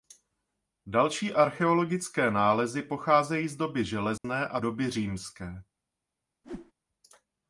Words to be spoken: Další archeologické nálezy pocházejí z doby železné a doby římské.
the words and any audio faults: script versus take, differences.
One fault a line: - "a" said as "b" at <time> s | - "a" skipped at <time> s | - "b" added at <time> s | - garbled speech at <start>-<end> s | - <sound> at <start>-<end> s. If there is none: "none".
- dropout at 4.2-4.2 s
- whoosh at 6.4-6.7 s